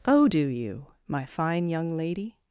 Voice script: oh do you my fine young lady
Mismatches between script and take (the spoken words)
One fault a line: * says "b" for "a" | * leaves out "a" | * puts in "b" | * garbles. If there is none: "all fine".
all fine